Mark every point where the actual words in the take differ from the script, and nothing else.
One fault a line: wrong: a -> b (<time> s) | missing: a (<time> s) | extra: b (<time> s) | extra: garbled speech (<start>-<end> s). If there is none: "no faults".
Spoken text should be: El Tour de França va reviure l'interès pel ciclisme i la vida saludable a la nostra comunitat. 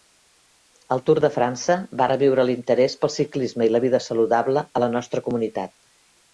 no faults